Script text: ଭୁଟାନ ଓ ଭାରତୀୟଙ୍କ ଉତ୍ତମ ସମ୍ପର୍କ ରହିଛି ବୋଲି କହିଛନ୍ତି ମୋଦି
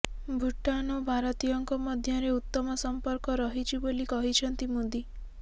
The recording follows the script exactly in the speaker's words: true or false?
false